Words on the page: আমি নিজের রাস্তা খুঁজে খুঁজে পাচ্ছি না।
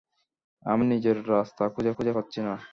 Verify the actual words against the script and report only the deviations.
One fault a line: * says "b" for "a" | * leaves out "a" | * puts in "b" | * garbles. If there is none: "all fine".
all fine